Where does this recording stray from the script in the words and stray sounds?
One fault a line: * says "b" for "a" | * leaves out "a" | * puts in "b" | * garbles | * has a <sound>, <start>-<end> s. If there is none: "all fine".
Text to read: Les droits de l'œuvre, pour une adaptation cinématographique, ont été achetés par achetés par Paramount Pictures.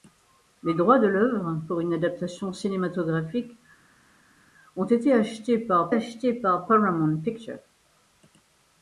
all fine